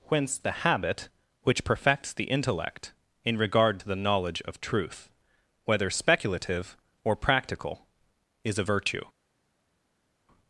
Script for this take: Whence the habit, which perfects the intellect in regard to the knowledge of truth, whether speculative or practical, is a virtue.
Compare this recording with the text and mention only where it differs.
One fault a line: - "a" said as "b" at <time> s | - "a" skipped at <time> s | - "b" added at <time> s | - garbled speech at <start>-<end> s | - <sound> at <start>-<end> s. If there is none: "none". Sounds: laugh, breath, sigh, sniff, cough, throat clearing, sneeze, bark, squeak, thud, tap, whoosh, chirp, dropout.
none